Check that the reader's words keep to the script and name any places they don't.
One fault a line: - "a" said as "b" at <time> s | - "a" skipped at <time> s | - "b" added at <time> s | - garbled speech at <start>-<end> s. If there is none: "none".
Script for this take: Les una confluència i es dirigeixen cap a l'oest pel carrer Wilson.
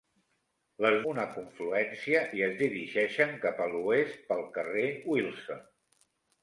none